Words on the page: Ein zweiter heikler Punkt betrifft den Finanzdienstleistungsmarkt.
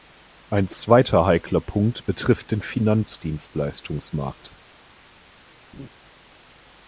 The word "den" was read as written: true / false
true